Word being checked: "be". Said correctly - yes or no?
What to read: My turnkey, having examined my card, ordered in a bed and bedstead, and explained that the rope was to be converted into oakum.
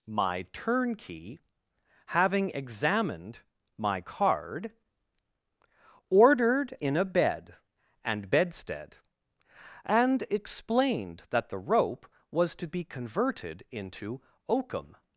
yes